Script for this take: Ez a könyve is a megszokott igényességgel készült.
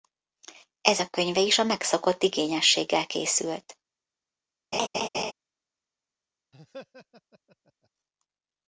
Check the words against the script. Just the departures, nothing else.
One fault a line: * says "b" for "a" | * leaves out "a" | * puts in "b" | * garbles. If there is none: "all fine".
all fine